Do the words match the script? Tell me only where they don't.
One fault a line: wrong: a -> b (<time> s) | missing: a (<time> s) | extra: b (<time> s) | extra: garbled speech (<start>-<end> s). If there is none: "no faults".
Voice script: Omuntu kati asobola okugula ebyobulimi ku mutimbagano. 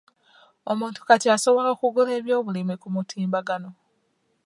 no faults